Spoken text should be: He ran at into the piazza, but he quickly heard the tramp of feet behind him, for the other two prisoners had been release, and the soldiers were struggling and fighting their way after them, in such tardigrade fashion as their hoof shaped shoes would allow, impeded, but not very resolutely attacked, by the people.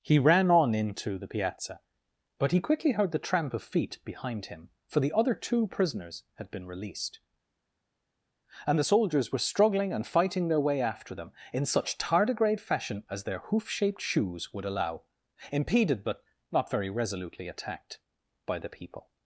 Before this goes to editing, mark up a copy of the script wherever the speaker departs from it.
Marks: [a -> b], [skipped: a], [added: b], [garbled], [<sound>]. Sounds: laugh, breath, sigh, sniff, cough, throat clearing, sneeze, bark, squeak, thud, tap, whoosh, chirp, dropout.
He ran [at -> on] into the piazza, but he quickly heard the tramp of feet behind him, for the other two prisoners had been [release, -> released] and the soldiers were struggling and fighting their way after them, in such tardigrade fashion as their hoof shaped shoes would allow, impeded, but not very resolutely attacked, by the people.